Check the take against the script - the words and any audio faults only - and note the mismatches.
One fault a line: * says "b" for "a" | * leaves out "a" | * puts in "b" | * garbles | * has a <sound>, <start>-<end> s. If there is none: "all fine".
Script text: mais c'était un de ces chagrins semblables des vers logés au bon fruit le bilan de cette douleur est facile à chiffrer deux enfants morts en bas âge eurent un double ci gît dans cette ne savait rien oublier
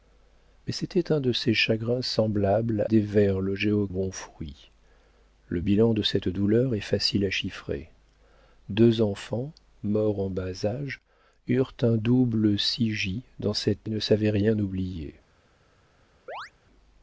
* has a chirp, 16.3-16.5 s